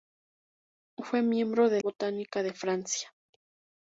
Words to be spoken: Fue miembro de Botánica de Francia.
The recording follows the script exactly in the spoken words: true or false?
true